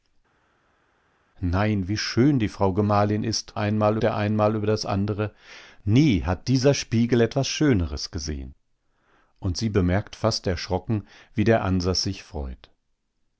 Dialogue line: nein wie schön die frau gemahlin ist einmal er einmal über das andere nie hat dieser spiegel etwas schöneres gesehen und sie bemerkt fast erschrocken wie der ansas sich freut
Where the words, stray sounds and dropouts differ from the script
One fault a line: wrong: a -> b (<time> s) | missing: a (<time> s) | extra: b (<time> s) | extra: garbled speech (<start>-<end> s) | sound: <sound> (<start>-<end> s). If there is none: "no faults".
no faults